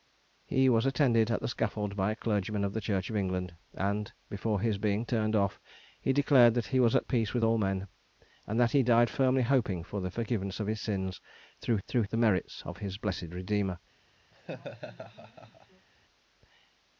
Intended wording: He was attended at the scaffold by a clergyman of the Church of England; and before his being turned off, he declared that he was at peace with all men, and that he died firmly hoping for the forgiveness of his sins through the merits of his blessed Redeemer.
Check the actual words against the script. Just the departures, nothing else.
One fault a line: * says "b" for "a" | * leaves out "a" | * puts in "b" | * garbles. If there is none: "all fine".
* puts in "through"